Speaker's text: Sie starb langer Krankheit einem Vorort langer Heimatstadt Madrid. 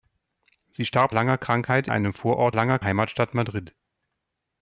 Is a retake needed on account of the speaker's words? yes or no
no